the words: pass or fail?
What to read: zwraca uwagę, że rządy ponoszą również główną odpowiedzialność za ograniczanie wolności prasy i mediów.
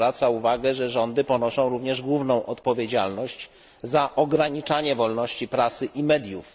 pass